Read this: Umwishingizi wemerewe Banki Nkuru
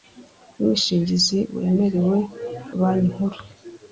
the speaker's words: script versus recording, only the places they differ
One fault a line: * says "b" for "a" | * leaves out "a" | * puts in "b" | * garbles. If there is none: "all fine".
all fine